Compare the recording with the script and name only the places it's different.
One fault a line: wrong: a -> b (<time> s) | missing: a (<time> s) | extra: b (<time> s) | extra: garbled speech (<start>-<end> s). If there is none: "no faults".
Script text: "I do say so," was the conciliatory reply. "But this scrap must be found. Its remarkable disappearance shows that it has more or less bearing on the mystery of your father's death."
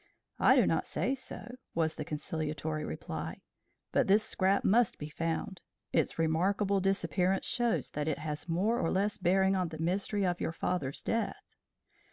extra: not (0.6 s)